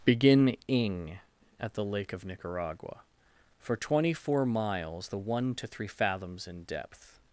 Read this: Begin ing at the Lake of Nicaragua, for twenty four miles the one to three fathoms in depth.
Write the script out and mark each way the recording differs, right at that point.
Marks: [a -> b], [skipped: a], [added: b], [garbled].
Begin ing at the Lake of Nicaragua, for twenty four miles the one to three fathoms in depth.